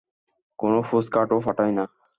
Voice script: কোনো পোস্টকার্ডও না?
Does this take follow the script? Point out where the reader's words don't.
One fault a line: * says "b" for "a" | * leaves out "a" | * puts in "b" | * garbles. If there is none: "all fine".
* puts in "পাঠায়"